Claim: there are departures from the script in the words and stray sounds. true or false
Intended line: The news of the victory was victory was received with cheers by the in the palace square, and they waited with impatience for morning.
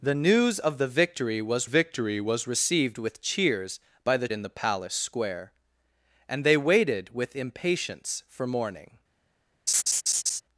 true